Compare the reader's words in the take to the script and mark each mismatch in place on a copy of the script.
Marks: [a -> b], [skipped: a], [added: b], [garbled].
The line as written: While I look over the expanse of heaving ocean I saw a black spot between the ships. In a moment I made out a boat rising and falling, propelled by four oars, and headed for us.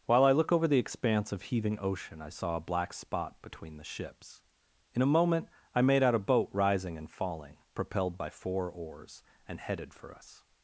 While I look over the expanse of heaving ocean I saw a black spot between the ships. In a moment I made out a boat rising and falling, propelled by four oars, and headed for us.